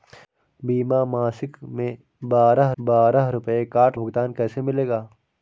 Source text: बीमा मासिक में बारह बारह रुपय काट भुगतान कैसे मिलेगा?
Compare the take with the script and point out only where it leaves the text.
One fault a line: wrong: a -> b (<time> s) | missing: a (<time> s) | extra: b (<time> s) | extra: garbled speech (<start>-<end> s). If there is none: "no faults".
no faults